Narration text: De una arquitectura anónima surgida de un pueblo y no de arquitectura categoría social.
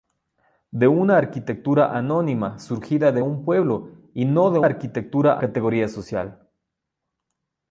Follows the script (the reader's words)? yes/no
yes